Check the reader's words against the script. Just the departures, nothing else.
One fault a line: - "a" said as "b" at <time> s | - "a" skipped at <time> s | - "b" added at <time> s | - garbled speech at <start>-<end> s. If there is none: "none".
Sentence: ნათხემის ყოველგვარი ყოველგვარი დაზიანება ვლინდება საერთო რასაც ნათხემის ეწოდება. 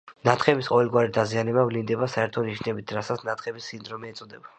- "ყოველგვარი" skipped at 1.1 s
- "ნიშნებით" added at 2.5 s
- "სინდრომი" added at 3.7 s